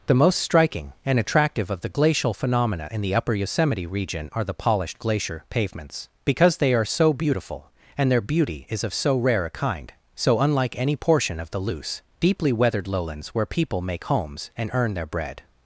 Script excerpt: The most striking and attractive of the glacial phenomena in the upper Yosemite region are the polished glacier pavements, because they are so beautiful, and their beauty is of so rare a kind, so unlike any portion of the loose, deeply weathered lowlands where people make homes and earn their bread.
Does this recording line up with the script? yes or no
yes